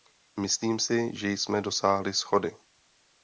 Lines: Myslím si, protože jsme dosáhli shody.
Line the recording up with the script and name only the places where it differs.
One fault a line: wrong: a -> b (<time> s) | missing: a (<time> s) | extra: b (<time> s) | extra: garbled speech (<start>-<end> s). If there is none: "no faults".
wrong: protože -> že (1.1 s)